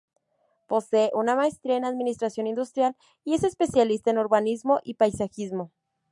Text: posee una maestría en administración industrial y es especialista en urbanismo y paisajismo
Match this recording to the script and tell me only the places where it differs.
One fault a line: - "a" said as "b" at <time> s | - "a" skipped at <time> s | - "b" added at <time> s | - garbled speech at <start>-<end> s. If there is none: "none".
none